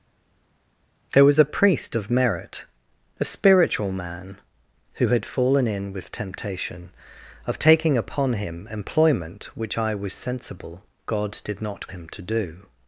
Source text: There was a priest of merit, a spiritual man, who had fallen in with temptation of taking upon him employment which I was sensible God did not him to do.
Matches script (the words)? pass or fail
pass